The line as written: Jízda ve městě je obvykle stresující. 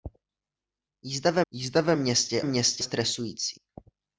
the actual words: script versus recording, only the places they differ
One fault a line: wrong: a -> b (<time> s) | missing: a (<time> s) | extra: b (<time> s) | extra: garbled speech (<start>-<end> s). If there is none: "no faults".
extra: jízda ve (1.5 s)
wrong: obvykle -> městě (2.4 s)